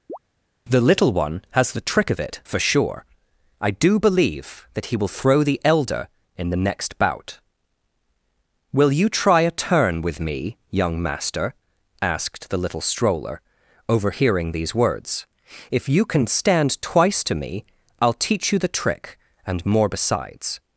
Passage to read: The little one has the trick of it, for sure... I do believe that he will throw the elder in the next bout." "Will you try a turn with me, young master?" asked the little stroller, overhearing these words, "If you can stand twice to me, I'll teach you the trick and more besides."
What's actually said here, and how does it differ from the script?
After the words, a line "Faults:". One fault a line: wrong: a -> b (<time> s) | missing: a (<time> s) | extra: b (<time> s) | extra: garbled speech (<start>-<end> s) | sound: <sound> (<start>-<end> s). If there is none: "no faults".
The little one has the trick of it, for sure... I do believe that he will throw the elder in the next bout." "Will you try a turn with me, young master?" asked the little stroller, overhearing these words, "If you can stand twice to me, I'll teach you the trick and more besides."
Faults:
sound: chirp (0.1-0.2 s)